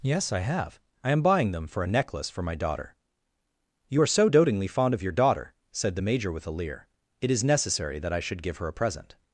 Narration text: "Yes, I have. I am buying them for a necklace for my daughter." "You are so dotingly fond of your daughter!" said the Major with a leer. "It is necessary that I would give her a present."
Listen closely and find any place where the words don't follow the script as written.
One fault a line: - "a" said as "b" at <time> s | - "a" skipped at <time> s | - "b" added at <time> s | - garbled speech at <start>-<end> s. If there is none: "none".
- "would" said as "should" at 8.2 s